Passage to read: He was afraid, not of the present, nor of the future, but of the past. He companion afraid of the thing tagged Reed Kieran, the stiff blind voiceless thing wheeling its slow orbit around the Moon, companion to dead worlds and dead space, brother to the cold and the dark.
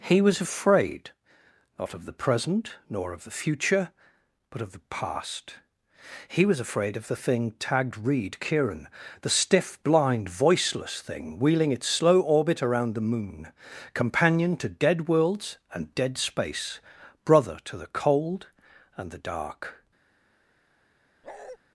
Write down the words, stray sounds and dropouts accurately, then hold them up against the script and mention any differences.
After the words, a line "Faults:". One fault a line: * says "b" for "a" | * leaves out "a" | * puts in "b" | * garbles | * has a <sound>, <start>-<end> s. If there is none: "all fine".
He was afraid, not of the present, nor of the future, but of the past. He was afraid of the thing tagged Reed Kieran, the stiff blind voiceless thing wheeling its slow orbit around the Moon, companion to dead worlds and dead space, brother to the cold and the dark.
Faults:
* says "was" for "companion"
* has a bark, 21.2-21.6 s